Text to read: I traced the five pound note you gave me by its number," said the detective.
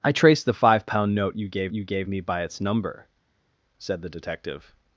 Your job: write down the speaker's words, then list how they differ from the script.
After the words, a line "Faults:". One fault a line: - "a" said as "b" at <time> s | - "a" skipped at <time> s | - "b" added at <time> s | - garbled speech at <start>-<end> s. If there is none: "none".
I traced the five pound note you gave you gave me by its number," said the detective.
Faults:
- "you gave" added at 1.7 s